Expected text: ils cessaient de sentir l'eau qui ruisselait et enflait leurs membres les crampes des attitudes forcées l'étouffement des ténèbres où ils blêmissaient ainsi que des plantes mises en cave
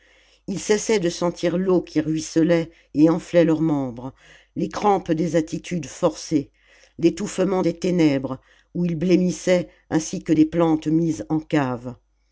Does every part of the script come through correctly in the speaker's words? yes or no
yes